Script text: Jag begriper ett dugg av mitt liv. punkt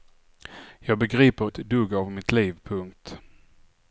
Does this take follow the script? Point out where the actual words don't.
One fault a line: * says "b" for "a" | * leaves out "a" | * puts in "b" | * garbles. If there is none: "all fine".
all fine